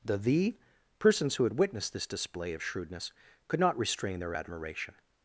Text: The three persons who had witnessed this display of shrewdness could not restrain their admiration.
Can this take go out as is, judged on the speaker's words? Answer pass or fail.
fail